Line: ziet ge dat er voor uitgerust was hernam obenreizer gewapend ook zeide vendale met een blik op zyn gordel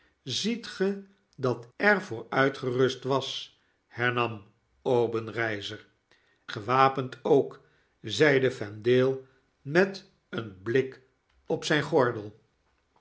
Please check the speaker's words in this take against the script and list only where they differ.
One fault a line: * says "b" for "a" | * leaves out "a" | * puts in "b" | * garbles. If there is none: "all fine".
all fine